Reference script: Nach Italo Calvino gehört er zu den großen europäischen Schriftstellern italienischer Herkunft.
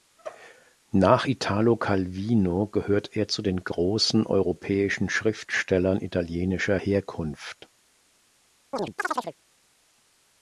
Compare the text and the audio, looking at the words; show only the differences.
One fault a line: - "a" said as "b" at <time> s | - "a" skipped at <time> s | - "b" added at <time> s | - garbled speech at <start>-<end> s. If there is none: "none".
none